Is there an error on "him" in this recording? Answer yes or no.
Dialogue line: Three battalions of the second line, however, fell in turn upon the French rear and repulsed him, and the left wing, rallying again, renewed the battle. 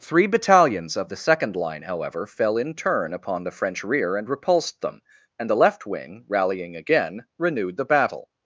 yes